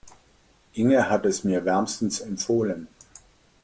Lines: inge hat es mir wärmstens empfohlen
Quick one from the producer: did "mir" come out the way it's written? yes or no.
yes